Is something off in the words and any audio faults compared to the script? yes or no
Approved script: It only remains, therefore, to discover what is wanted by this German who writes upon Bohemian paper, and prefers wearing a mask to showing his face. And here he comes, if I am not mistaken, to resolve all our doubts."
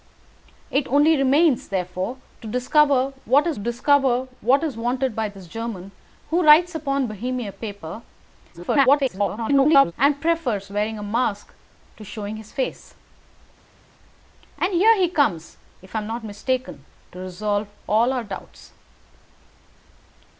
yes